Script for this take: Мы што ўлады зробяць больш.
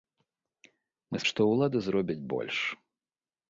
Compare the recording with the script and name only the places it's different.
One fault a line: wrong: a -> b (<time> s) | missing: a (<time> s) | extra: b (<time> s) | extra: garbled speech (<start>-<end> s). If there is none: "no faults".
no faults